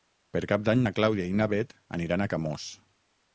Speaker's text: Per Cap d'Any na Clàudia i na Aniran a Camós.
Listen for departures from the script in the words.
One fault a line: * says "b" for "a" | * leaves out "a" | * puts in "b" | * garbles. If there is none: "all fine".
* puts in "Bet"